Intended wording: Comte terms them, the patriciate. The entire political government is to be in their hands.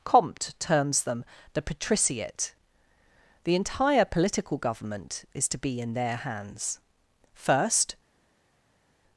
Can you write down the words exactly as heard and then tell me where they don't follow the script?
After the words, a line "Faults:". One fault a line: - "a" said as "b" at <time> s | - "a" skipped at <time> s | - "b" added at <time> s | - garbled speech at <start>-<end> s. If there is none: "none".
Comte terms them, the patriciate. The entire political government is to be in their hands. First
Faults:
- "First" added at 7.3 s